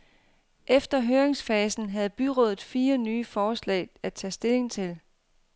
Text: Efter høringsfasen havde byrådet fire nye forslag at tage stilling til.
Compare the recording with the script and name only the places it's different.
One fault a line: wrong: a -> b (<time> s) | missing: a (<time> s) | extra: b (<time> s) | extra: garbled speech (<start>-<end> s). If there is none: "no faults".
no faults